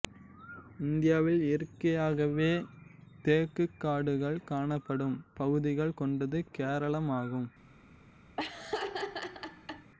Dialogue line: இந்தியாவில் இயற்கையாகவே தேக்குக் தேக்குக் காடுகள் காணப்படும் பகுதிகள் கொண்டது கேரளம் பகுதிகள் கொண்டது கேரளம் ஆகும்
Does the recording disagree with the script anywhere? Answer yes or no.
yes